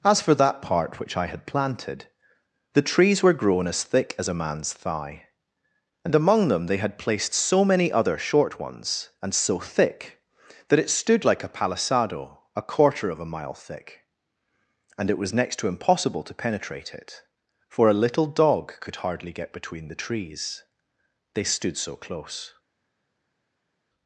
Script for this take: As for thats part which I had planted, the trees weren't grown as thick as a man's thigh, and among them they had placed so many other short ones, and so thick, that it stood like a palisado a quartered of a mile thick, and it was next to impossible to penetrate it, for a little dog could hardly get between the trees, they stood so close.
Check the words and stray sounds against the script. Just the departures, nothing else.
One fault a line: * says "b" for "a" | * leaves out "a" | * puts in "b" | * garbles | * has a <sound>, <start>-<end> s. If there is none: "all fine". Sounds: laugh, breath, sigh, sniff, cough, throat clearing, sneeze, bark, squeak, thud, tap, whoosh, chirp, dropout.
* says "that" for "thats"
* says "were" for "weren't"
* says "quarter" for "quartered"